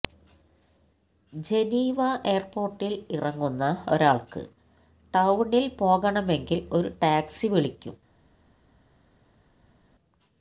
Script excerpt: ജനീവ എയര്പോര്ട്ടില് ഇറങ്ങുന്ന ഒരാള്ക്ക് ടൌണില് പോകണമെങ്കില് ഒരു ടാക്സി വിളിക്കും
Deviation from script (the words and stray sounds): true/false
false